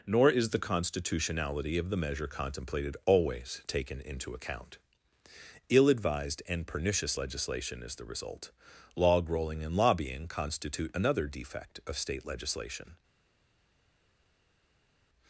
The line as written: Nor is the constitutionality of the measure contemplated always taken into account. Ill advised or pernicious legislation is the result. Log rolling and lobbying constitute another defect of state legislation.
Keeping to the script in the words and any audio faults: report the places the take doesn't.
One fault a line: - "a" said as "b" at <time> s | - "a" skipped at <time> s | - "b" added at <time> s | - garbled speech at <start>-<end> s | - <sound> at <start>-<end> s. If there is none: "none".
- "or" said as "and" at 6.5 s